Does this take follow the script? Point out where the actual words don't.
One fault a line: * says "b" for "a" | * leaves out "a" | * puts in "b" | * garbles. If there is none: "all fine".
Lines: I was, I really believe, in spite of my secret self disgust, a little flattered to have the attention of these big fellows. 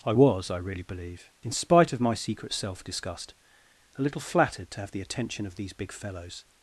all fine